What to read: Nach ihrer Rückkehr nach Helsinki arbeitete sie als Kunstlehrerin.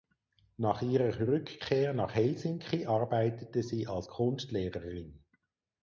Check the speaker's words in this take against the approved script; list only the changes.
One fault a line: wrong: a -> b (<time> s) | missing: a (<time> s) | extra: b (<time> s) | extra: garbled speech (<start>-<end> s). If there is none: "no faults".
no faults